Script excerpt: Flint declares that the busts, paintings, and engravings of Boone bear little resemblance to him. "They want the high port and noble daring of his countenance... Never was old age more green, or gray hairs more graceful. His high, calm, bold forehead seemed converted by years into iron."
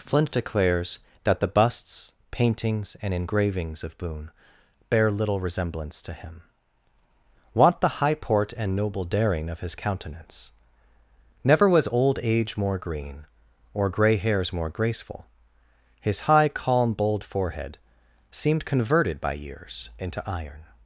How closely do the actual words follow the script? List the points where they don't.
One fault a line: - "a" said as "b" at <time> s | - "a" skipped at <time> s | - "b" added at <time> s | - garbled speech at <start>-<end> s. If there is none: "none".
- "They" skipped at 6.4 s